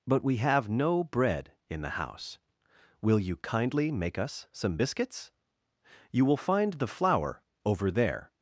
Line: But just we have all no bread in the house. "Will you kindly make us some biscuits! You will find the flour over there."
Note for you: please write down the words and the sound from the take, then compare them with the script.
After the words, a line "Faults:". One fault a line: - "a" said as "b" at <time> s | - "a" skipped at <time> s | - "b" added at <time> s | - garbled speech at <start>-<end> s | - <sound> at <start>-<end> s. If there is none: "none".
But we have no bread in the house. "Will you kindly make us some biscuits! You will find the flour over there."
Faults:
- "just" skipped at 0.2 s
- "all" skipped at 0.7 s